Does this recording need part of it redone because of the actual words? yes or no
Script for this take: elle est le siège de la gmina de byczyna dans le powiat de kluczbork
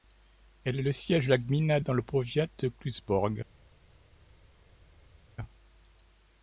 yes